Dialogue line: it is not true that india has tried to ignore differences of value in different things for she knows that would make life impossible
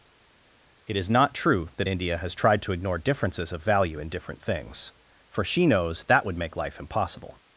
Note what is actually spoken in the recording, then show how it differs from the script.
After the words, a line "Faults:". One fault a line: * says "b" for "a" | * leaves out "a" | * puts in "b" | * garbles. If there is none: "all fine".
it is not true that india has tried to ignore differences of value in different things for she knows that would make life impossible
Faults:
all fine